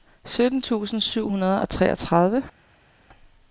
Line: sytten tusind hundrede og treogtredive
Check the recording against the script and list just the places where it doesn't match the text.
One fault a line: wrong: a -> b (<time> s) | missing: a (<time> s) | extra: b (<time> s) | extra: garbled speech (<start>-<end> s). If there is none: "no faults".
extra: syv (1.0 s)